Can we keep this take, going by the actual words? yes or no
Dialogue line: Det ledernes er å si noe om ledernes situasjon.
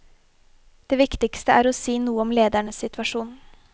no